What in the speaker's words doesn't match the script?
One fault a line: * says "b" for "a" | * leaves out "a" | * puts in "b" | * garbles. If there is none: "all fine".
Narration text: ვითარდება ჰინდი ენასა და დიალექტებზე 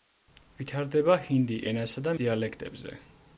all fine